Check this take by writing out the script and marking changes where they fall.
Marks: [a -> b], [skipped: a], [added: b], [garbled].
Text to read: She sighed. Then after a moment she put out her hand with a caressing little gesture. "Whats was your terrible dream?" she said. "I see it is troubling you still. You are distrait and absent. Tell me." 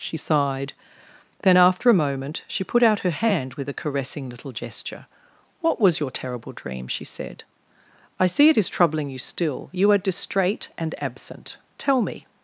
She sighed. Then after a moment she put out her hand with a caressing little gesture. ["Whats -> What] was your terrible dream?" she said. "I see it is troubling you still. You are distrait and absent. Tell me."